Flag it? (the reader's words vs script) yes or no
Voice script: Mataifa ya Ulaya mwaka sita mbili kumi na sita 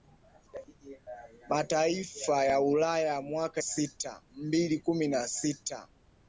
no